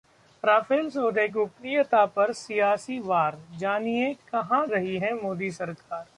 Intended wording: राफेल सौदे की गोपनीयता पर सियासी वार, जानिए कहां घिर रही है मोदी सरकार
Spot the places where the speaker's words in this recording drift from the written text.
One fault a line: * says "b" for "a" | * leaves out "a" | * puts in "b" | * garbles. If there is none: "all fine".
* leaves out "की"
* leaves out "घिर"